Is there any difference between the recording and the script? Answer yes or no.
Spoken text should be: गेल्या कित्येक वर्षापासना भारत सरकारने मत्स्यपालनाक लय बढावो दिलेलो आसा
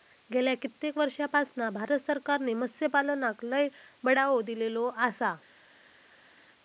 no